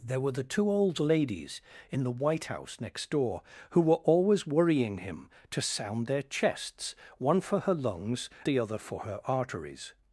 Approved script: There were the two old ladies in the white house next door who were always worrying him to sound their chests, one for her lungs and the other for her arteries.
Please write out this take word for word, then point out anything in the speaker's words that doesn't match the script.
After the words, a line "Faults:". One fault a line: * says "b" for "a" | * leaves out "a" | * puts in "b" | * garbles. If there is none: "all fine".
There were the two old ladies in the white house next door who were always worrying him to sound their chests, one for her lungs the other for her arteries.
Faults:
* leaves out "and"